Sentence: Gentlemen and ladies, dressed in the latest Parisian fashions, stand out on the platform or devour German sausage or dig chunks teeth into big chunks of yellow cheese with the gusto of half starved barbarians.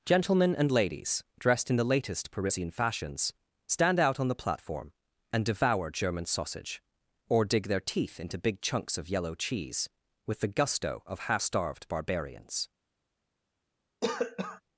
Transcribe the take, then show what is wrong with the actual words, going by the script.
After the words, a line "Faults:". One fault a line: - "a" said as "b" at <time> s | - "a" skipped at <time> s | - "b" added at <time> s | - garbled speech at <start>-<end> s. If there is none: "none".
Gentlemen and ladies, dressed in the latest Parisian fashions, stand out on the platform and devour German sausage or dig their teeth into big chunks of yellow cheese with the gusto of half starved barbarians.
Faults:
- "or" said as "and" at 5.3 s
- "chunks" said as "their" at 7.7 s